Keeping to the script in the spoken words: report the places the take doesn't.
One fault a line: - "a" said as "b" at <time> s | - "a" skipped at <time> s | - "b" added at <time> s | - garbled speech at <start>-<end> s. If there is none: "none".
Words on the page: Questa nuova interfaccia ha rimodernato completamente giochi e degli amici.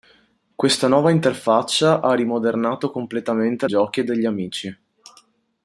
none